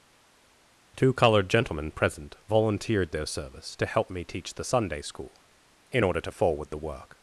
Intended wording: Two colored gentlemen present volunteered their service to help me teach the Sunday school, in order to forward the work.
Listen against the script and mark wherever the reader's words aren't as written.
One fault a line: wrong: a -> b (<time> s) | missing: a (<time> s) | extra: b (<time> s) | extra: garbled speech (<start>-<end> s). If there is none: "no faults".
no faults